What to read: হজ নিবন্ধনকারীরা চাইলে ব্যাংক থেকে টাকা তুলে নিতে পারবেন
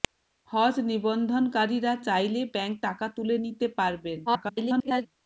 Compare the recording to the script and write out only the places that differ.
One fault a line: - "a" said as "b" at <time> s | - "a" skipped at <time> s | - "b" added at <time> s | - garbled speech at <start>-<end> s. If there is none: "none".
- "থেকে" skipped at 2.8 s
- garbled speech at 4.3-5.1 s